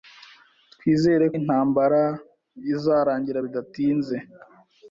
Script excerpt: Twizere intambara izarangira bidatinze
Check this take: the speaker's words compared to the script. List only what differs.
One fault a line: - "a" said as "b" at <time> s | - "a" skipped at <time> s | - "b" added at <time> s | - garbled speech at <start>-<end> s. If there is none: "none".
none